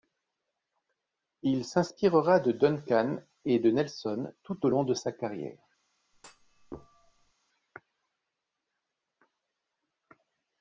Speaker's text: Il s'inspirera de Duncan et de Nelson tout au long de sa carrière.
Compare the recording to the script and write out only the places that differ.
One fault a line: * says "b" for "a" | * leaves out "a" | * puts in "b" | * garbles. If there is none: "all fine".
all fine